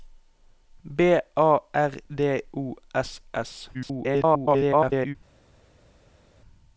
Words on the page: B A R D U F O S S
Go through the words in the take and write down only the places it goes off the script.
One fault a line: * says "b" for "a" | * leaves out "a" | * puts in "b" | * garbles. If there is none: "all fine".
* leaves out "U F"
* garbles